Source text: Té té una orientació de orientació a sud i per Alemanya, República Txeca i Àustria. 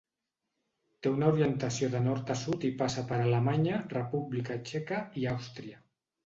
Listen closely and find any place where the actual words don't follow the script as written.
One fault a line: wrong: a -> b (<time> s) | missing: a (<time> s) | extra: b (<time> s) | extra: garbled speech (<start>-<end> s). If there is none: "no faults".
missing: té (1.1 s)
wrong: orientació -> nord (2.0 s)
extra: passa (2.8 s)